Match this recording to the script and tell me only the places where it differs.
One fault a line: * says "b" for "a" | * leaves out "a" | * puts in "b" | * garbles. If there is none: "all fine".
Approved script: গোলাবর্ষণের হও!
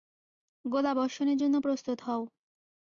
* puts in "জন্য প্রস্তুত"